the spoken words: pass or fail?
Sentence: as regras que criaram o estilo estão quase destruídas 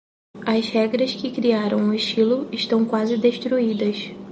pass